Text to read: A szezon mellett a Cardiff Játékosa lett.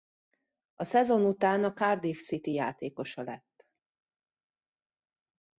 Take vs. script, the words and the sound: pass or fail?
fail